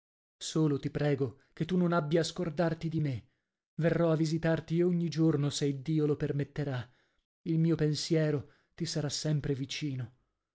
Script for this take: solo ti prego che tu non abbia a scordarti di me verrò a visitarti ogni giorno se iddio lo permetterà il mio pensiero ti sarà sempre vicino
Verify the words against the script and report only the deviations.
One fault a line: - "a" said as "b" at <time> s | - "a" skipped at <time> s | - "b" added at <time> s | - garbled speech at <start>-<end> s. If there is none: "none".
none